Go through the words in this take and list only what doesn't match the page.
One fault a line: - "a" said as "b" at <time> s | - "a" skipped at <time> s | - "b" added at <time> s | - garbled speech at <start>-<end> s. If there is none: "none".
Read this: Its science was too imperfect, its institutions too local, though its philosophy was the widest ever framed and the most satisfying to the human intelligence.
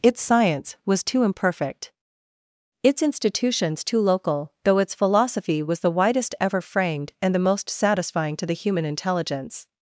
none